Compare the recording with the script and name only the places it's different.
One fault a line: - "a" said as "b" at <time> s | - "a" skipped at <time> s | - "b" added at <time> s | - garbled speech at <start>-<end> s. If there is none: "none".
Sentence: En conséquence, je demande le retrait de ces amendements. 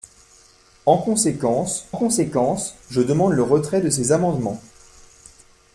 - "conséquence" added at 1.9 s